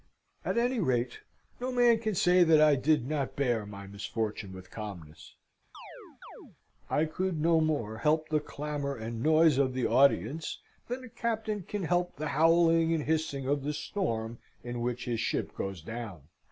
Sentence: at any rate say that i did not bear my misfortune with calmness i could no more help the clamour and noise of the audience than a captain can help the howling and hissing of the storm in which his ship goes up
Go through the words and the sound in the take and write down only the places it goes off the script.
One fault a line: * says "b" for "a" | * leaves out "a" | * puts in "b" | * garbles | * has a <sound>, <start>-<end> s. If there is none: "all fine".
* puts in "no man can"
* has a chirp, 5.7-6.6 s
* says "down" for "up"